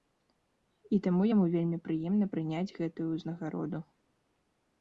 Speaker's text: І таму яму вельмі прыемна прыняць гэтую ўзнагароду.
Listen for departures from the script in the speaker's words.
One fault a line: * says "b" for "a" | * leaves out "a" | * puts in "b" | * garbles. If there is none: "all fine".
all fine